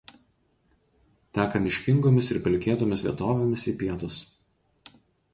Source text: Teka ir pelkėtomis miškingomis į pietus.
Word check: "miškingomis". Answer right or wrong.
wrong